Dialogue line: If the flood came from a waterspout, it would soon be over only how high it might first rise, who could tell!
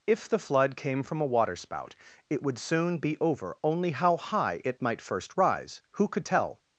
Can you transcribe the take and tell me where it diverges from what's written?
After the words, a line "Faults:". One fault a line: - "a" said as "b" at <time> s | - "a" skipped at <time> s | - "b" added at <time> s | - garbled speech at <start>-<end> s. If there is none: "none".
If the flood came from a waterspout, it would soon be over only how high it might first rise, who could tell!
Faults:
none